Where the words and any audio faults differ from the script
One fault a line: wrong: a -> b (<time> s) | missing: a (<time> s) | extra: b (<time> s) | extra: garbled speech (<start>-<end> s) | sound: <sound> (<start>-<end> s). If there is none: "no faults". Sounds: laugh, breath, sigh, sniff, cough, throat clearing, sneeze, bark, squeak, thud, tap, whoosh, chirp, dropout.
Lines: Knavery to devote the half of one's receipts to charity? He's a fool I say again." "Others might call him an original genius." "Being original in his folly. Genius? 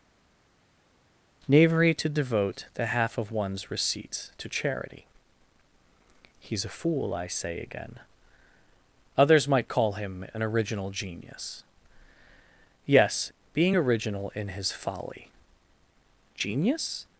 extra: Yes (12.9 s)